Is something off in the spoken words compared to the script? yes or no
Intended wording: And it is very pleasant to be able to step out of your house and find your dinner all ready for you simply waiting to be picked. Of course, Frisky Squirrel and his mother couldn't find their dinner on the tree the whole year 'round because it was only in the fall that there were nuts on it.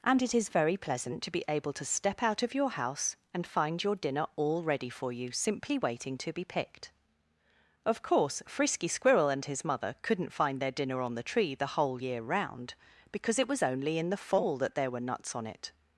no